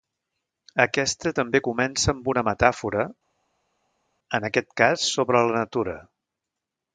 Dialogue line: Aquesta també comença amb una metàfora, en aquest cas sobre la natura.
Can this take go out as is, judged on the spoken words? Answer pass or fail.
pass